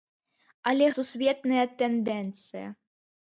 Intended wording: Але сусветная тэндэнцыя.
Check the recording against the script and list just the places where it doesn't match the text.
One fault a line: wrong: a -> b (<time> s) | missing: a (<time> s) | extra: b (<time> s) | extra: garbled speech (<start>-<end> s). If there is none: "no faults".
no faults